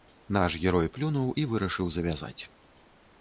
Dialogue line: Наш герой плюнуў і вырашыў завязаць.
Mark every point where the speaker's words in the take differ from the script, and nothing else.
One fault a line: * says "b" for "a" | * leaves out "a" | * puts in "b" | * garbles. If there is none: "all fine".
all fine